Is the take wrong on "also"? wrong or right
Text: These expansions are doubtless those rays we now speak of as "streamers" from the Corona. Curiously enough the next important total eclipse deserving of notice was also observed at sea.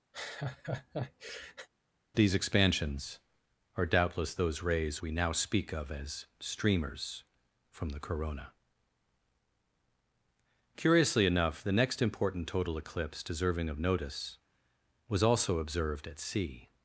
right